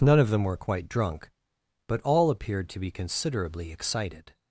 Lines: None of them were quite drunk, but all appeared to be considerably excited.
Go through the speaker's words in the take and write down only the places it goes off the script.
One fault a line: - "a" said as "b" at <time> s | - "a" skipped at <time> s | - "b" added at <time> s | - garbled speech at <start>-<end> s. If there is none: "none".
none